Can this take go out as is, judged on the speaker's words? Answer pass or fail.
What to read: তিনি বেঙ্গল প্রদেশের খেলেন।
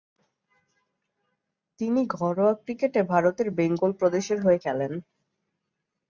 fail